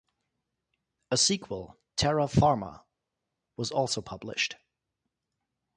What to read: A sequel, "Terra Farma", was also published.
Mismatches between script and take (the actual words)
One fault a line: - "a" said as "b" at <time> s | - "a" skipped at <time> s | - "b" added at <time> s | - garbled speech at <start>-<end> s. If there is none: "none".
none